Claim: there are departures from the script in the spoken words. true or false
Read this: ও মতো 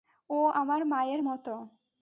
true